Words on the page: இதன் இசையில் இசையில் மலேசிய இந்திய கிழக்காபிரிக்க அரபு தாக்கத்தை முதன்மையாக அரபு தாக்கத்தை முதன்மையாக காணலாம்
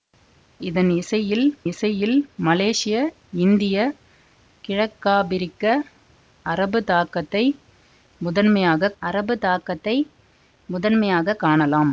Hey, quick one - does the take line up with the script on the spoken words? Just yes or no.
yes